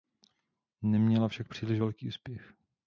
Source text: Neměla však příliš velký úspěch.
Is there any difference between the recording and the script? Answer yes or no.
no